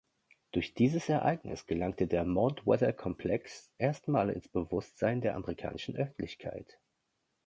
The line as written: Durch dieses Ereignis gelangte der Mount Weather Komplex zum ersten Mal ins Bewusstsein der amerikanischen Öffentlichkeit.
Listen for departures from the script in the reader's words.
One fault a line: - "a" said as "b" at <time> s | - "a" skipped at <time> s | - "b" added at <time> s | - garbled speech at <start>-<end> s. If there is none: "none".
- "zum" skipped at 3.8 s